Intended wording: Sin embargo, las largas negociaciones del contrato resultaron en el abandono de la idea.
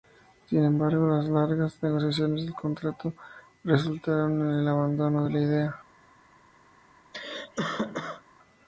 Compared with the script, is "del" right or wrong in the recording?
right